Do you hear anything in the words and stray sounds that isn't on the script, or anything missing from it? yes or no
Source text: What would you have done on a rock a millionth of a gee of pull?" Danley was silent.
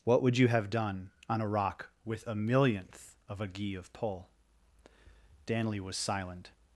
yes